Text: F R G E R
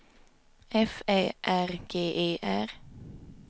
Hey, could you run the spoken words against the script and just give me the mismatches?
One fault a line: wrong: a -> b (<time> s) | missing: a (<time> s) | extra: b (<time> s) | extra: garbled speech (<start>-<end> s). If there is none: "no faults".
extra: Ä (1.1 s)